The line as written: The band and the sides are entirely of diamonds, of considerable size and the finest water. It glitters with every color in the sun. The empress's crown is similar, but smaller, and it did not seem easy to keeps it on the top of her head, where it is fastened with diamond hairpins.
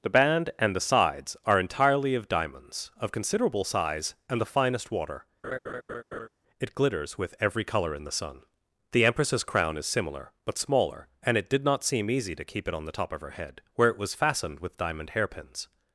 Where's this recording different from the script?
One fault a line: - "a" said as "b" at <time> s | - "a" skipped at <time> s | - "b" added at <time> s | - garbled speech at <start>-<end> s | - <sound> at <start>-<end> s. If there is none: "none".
- laugh at 5.4-6.3 s
- "keeps" said as "keep" at 12.5 s
- "is" said as "was" at 14.0 s